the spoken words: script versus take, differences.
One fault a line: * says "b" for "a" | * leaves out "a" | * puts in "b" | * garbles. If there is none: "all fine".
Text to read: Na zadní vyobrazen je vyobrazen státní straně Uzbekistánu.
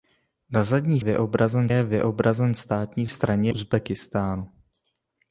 all fine